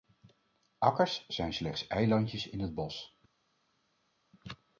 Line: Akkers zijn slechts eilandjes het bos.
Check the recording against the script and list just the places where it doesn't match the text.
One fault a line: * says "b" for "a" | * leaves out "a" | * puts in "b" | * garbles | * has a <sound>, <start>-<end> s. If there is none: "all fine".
* puts in "in"